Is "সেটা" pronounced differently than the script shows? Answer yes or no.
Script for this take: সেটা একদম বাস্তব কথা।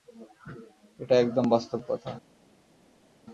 yes